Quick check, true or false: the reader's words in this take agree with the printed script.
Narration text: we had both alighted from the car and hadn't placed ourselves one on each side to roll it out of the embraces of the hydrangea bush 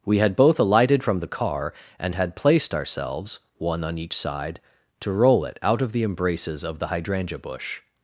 false